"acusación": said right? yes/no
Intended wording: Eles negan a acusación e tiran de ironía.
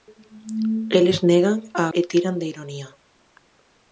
no